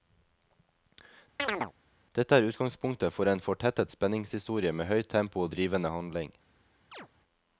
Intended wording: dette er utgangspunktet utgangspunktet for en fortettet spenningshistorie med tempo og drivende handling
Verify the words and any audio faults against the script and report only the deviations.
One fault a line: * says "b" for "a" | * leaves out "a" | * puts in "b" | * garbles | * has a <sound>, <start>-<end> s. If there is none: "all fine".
* has a chirp, 1.4-1.7 s
* leaves out "utgangspunktet"
* puts in "høyt"
* has a chirp, 6.9-7.1 s